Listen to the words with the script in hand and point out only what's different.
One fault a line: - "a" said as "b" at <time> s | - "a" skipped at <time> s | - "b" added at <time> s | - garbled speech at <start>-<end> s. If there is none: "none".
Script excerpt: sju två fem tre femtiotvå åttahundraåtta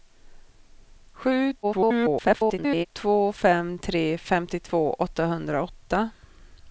- garbled speech at 1.6-2.9 s